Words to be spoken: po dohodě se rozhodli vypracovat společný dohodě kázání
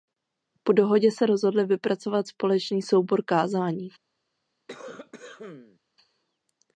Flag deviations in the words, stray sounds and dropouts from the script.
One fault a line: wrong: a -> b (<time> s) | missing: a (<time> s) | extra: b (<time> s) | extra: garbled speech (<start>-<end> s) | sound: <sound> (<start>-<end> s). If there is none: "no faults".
wrong: dohodě -> soubor (2.8 s)
sound: cough (4.7-5.8 s)